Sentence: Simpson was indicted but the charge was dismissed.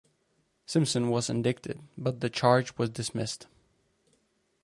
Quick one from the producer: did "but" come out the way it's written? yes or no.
yes